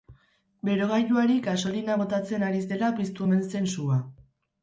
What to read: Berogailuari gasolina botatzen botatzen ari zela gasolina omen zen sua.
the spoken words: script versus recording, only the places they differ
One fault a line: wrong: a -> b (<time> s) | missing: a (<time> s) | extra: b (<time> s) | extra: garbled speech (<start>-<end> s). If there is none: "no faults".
missing: botatzen (2.5 s)
wrong: gasolina -> piztu (3.0 s)